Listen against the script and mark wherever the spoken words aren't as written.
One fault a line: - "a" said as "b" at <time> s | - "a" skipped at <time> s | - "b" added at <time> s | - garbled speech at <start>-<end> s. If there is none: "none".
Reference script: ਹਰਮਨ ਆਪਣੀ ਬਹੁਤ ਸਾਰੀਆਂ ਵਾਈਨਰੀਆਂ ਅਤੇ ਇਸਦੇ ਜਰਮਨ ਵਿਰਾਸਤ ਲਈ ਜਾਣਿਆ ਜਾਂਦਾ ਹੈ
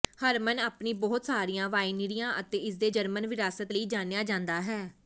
none